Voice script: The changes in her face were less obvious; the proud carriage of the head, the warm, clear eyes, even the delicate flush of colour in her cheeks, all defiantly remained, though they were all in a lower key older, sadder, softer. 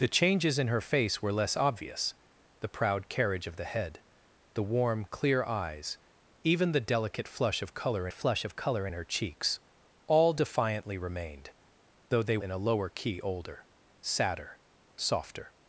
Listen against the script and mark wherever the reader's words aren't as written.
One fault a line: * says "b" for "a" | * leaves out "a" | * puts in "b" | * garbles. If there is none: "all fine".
* puts in "flush of colour"
* leaves out "were all"